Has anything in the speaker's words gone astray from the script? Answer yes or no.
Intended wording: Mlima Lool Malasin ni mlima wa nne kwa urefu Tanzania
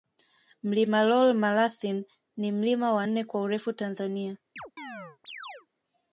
no